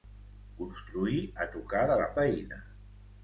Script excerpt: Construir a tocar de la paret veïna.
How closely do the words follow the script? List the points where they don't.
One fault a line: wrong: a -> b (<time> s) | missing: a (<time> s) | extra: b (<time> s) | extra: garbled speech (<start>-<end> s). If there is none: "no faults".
missing: paret (2.1 s)